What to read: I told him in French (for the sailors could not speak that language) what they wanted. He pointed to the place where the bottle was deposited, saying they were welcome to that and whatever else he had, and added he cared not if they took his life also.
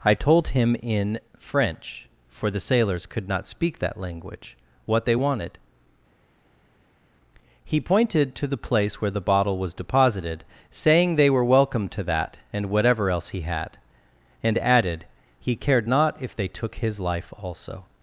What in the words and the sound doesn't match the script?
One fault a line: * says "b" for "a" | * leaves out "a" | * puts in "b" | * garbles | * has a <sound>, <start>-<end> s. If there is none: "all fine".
all fine